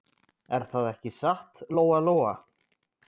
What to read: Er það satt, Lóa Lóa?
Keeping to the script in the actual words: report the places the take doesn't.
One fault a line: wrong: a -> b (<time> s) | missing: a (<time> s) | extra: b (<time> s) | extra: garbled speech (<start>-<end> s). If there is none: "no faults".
extra: ekki (0.9 s)